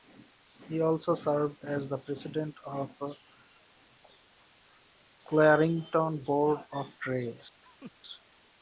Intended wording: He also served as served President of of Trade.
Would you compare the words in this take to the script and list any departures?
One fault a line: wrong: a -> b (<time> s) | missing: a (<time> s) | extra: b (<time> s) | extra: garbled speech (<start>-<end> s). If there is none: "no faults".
wrong: served -> the (1.9 s)
extra: the Clarington Board (3.0 s)